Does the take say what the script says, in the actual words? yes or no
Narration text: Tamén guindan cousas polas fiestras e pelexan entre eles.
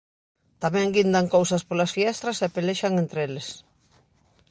yes